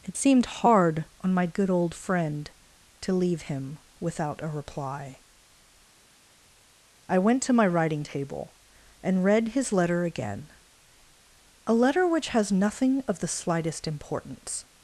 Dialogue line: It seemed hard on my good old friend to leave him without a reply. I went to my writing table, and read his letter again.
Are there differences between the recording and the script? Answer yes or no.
yes